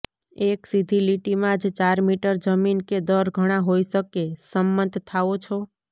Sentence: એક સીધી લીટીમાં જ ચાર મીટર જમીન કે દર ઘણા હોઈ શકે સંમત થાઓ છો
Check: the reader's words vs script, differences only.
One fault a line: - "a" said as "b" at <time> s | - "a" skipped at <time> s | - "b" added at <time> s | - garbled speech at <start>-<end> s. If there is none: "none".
none